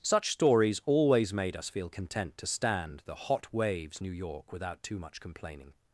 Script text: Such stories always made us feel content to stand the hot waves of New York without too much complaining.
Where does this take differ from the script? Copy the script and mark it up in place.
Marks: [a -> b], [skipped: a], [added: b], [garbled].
Such stories always made us feel content to stand the hot waves [skipped: of] New York without too much complaining.